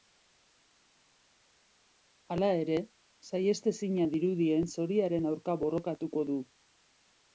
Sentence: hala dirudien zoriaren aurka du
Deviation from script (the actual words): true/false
true